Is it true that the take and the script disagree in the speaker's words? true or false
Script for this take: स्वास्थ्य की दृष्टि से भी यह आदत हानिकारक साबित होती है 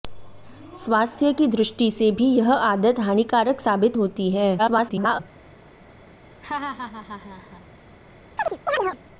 true